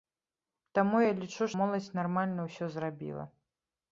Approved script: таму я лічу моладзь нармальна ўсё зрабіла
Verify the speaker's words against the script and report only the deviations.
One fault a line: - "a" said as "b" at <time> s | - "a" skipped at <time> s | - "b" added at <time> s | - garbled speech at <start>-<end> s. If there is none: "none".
none